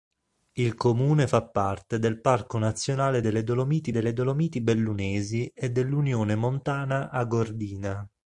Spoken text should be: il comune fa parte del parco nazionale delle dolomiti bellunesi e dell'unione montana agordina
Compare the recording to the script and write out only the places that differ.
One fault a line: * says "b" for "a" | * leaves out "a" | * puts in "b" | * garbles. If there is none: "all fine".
* puts in "delle dolomiti"